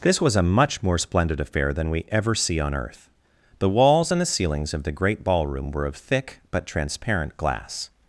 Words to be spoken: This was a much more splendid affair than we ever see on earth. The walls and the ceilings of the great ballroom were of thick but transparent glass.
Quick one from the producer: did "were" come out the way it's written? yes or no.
yes